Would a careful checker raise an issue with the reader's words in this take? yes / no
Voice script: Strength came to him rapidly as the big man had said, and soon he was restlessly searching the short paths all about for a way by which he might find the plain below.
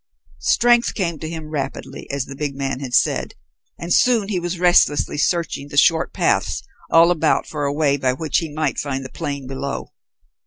no